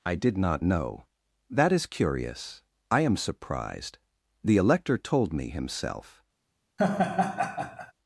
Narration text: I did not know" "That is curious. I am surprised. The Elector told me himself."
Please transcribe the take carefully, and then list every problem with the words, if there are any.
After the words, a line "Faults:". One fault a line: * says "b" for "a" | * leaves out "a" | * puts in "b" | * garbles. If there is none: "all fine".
I did not know" "That is curious. I am surprised. The Elector told me himself."
Faults:
all fine